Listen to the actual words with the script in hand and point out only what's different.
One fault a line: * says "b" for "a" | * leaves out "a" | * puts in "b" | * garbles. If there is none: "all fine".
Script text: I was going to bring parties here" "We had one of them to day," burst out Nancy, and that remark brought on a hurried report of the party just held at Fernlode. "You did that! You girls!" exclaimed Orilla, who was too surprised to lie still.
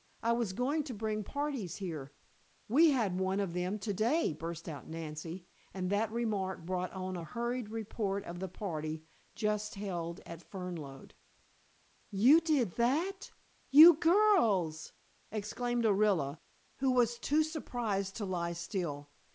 all fine